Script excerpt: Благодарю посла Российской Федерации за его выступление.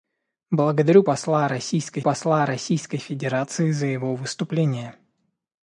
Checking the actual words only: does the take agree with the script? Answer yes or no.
no